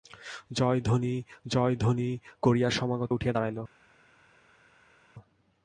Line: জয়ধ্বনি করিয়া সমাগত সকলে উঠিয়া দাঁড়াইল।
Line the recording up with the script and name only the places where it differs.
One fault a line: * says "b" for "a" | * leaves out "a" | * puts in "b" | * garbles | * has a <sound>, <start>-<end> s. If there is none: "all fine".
* puts in "জয়ধ্বনি"
* leaves out "সকলে"